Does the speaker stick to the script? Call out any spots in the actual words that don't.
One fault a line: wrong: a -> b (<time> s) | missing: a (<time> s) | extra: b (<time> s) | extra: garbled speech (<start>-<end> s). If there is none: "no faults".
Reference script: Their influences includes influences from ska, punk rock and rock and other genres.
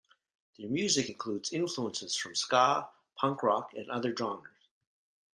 wrong: influences -> music (0.7 s)
missing: rock and (3.9 s)